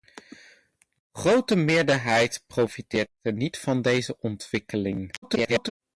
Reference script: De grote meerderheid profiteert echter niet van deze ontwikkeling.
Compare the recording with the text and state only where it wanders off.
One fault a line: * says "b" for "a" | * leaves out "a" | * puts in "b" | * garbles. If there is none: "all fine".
* garbles